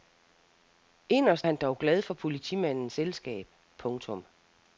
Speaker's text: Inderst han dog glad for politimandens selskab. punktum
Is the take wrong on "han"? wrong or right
right